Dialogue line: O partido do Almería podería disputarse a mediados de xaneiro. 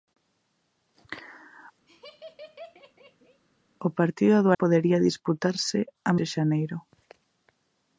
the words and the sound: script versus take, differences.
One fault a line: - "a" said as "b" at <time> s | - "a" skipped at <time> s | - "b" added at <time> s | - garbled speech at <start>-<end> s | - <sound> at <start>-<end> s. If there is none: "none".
- laugh at 1.9-3.4 s
- "Almería" skipped at 4.5 s
- "mediados" skipped at 6.1 s